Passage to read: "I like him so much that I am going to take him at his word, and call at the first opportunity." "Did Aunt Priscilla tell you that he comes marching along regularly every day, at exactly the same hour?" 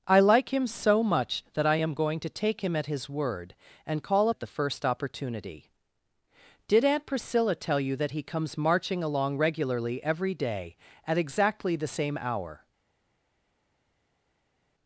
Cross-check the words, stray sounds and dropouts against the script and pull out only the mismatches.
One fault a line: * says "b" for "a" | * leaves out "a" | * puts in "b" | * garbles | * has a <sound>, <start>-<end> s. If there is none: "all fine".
all fine